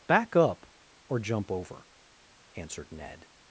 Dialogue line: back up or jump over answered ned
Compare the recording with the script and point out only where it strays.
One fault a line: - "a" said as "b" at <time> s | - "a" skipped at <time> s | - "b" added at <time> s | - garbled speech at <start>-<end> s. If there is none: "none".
none